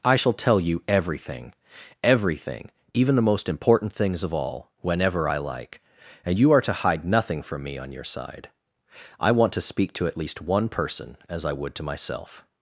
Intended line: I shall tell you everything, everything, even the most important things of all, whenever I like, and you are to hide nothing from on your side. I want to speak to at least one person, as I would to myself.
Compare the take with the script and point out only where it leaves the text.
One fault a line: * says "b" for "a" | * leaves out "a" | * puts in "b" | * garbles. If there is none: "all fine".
* puts in "me"